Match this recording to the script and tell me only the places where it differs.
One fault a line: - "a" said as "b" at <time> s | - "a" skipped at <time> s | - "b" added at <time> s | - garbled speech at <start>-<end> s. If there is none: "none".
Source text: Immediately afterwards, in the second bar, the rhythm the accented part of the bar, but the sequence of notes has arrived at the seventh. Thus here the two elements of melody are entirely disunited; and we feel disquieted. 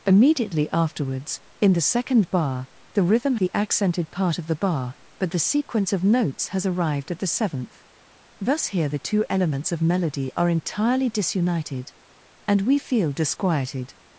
none